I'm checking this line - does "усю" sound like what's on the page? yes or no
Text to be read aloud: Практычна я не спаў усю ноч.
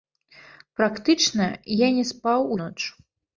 no